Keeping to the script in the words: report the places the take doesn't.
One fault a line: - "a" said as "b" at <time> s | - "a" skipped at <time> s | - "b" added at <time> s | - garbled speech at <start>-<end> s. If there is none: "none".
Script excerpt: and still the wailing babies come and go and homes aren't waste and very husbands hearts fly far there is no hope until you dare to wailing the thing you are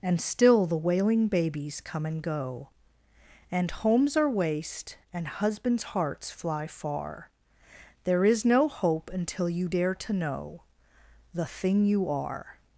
- "aren't" said as "are" at 4.2 s
- "very" skipped at 5.3 s
- "wailing" said as "know" at 10.1 s